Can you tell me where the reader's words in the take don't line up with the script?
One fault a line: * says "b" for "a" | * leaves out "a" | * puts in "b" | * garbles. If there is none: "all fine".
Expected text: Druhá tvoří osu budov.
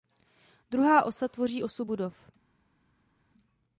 * puts in "osa"